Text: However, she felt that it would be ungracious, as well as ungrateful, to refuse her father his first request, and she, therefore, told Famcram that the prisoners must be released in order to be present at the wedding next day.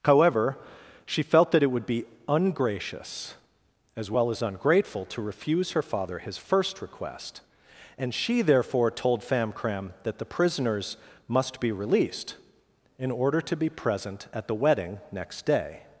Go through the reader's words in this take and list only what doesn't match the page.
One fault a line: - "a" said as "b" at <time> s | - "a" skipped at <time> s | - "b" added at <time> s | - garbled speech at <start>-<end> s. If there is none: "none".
none